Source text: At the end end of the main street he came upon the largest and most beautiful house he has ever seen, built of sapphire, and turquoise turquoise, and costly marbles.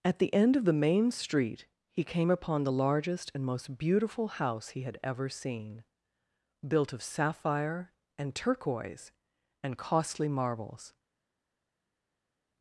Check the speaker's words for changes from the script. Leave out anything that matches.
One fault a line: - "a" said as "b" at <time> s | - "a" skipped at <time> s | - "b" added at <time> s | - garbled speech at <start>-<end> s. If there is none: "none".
- "end" skipped at 0.6 s
- "has" said as "had" at 4.8 s
- "turquoise" skipped at 9.1 s